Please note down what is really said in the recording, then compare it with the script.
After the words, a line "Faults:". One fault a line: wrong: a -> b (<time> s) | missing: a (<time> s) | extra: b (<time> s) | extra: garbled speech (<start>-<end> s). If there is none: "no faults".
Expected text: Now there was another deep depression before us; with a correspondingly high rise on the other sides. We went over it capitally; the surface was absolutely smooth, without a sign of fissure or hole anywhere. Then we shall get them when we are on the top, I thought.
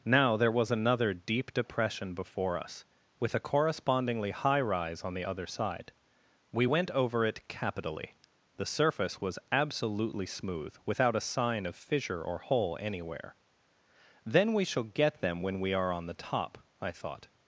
Now there was another deep depression before us; with a correspondingly high rise on the other side. We went over it capitally; the surface was absolutely smooth, without a sign of fissure or hole anywhere. Then we shall get them when we are on the top, I thought.
Faults:
wrong: sides -> side (5.5 s)